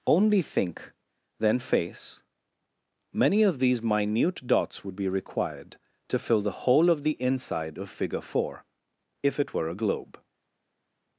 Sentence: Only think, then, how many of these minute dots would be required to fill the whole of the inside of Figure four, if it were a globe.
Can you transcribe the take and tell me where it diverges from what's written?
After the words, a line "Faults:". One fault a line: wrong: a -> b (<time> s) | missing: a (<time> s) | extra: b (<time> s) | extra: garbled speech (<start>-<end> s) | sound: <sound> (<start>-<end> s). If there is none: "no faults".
Only think, then, face many of these minute dots would be required to fill the whole of the inside of Figure four, if it were a globe.
Faults:
wrong: how -> face (1.6 s)